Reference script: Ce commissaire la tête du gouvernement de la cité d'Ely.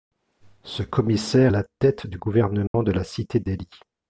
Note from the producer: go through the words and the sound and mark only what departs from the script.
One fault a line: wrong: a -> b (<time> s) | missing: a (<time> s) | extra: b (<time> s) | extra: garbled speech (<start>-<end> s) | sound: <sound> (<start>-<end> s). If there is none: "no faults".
sound: dropout (2.7-2.7 s)